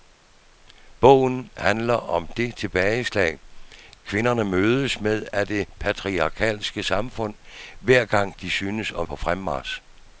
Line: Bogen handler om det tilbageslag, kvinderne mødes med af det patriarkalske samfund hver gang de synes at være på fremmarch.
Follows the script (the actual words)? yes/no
no